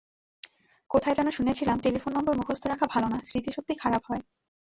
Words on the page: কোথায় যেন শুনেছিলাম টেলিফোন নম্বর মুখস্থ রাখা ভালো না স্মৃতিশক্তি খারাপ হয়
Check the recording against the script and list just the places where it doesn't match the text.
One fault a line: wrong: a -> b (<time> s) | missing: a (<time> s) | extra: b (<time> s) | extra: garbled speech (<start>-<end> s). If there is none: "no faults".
no faults